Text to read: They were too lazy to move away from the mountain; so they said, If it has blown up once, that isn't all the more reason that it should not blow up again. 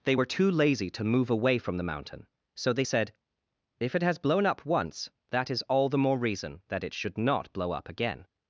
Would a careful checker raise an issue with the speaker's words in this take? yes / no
yes